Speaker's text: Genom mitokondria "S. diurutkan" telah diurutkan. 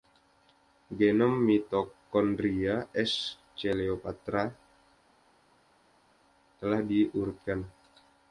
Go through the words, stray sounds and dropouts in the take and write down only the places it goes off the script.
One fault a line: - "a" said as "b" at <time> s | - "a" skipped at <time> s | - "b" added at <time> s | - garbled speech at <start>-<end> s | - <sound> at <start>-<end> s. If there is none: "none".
- "diurutkan" said as "coleoptrata" at 3.5 s